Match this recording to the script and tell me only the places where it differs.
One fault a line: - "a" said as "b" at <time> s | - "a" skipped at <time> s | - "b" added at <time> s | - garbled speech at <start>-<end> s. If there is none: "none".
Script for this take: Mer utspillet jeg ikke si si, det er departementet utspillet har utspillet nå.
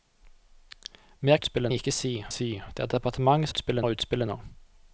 none